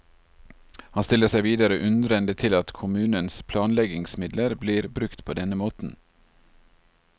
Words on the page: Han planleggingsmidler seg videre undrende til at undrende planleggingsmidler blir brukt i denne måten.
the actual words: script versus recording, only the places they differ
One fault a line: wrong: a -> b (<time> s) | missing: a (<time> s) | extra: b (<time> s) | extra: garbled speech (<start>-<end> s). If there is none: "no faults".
wrong: planleggingsmidler -> stiller (1.1 s)
wrong: undrende -> kommunens (2.8 s)
wrong: i -> på (5.2 s)